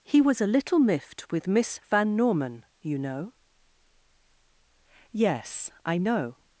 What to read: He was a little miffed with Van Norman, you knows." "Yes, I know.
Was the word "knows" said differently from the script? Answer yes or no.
yes